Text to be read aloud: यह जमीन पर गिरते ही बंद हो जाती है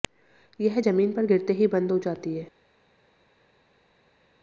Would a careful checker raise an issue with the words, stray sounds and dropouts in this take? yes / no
no